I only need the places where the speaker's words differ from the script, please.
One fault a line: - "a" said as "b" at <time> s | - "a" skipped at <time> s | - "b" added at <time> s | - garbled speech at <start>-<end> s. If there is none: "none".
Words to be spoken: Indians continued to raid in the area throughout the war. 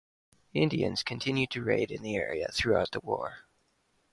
none